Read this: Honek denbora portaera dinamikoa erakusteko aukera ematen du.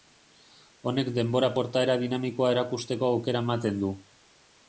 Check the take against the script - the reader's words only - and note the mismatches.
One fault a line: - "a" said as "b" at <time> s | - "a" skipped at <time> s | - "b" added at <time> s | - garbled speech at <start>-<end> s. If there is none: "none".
none